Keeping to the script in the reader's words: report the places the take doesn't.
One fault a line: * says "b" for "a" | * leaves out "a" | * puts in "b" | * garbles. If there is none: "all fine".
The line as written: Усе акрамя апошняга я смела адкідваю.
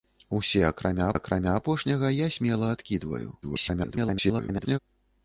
* puts in "акрамя"
* garbles